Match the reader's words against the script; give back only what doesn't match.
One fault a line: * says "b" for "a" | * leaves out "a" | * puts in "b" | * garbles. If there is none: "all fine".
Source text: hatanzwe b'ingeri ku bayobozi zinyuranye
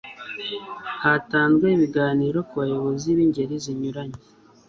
* says "ibiganiro" for "b'ingeri"
* puts in "b'ingeri"